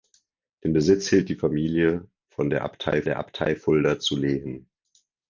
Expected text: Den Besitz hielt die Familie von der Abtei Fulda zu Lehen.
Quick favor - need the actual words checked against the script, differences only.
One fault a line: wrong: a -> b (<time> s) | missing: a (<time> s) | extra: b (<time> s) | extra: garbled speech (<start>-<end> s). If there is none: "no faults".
extra: der Abtei (3.0 s)